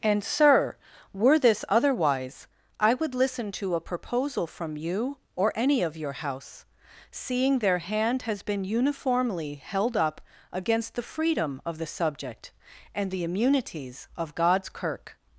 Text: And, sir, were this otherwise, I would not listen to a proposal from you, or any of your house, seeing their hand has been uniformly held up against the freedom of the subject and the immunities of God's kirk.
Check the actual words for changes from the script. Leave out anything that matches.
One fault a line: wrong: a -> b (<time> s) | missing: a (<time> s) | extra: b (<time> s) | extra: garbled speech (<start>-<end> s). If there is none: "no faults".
missing: not (3.1 s)